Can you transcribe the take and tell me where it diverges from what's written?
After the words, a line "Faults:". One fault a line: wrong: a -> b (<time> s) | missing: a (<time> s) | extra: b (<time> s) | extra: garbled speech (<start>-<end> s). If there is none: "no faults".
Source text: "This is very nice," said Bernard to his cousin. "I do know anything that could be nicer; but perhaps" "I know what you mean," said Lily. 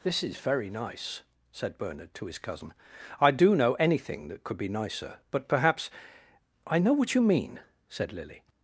"This is very nice," said Bernard to his cousin. "I do know anything that could be nicer; but perhaps" "I know what you mean," said Lily.
Faults:
no faults